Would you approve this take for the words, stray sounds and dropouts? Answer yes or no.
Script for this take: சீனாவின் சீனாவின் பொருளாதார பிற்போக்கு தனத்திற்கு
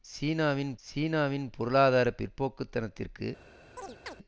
no